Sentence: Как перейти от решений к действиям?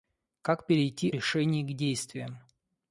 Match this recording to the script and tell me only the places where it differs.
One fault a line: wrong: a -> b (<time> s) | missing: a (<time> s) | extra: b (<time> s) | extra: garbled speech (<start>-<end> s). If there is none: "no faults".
missing: от (1.1 s)